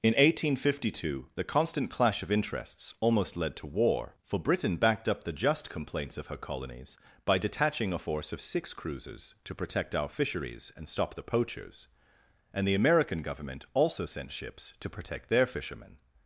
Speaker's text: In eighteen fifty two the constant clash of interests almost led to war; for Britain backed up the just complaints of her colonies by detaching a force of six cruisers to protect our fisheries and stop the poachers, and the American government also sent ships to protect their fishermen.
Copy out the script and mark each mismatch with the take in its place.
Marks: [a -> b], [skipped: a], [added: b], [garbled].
In eighteen fifty two the constant clash of interests almost led to war; for Britain backed up the just complaints of her colonies by detaching a force of six cruisers to protect our fisheries and stop the poachers, and the American government also sent ships to protect their fishermen.